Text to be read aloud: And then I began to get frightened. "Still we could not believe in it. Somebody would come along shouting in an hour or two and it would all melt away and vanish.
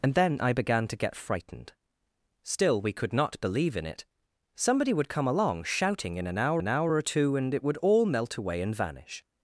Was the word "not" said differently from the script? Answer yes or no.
no